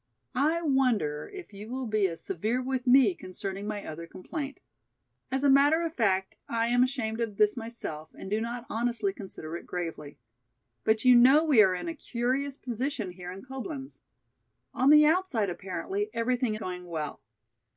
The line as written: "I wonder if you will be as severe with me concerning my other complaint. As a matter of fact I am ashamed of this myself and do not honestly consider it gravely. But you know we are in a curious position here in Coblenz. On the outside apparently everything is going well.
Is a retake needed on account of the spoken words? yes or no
yes